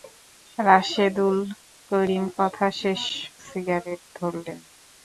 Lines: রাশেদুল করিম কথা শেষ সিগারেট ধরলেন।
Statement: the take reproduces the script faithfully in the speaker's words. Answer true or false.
true